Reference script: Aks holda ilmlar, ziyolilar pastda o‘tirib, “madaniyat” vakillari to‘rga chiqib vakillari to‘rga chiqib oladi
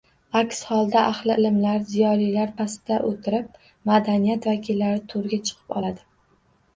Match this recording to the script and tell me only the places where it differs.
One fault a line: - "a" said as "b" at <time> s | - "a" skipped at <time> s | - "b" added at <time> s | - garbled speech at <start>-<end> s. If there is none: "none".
- "ahli" added at 1.1 s
- "vakillari to‘rga chiqib" skipped at 5.8 s